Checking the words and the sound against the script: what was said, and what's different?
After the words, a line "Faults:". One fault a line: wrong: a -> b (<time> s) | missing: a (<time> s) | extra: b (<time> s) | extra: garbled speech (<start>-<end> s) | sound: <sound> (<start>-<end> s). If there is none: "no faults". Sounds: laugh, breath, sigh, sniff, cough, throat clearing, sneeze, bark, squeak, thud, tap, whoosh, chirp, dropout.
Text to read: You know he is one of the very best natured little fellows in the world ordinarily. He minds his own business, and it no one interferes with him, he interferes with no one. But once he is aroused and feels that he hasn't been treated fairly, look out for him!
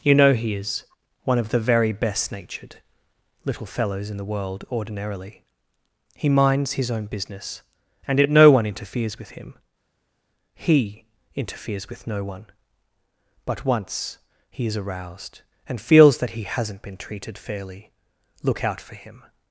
You know he is one of the very best natured little fellows in the world ordinarily. He minds his own business, and it no one interferes with him, he interferes with no one. But once he is aroused and feels that he hasn't been treated fairly, look out for him!
Faults:
no faults